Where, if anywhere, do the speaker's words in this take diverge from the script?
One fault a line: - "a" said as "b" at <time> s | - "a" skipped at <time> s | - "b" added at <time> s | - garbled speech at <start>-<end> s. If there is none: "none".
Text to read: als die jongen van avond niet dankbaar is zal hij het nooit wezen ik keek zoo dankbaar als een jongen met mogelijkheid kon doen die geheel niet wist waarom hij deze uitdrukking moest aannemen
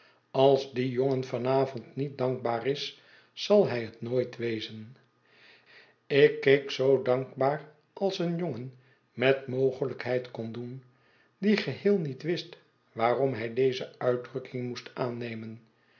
none